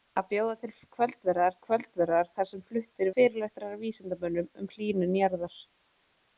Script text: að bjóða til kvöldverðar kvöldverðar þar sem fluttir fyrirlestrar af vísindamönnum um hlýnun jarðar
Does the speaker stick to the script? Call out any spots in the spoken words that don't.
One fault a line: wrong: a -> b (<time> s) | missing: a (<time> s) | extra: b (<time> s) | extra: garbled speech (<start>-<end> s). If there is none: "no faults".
no faults